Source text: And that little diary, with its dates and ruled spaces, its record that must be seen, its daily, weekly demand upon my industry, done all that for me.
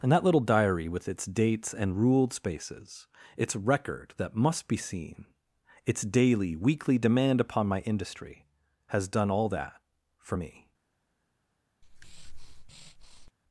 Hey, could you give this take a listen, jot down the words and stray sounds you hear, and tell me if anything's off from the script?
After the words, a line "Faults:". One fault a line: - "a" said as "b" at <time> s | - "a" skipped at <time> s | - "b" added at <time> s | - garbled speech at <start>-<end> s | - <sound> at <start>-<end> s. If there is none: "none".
And that little diary, with its dates and ruled spaces, its record that must be seen, its daily, weekly demand upon my industry, has done all that for me.
Faults:
- "has" added at 8.9 s
- breath at 11.8-13.3 s